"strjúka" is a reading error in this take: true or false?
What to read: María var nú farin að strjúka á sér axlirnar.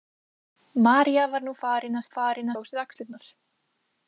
true